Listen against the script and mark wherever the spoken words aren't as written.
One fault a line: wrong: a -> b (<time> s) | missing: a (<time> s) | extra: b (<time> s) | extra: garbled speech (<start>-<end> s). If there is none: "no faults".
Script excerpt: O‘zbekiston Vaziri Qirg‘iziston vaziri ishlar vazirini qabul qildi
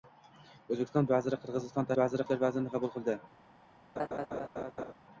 no faults